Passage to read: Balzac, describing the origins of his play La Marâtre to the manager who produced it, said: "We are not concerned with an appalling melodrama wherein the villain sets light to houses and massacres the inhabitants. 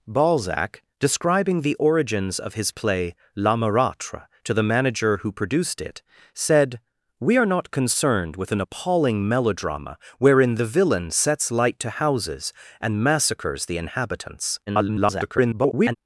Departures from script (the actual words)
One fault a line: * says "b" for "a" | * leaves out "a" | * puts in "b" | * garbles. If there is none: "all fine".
* garbles